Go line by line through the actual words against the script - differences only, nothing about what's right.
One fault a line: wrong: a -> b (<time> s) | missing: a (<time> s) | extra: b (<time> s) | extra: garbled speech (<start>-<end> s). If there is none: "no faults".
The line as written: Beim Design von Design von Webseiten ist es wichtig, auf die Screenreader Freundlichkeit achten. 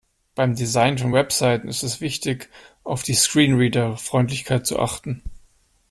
missing: Design von (1.1 s)
extra: zu (4.7 s)